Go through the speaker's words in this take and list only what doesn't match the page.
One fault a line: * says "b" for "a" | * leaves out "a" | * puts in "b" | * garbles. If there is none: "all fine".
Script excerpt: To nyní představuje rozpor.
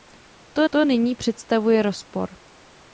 * puts in "to"